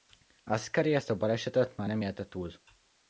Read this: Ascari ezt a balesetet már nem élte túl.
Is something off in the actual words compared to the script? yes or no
no